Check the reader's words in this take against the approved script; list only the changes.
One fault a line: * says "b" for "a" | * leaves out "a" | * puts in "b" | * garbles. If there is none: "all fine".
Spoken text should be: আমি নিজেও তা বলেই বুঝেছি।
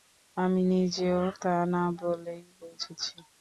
* puts in "না"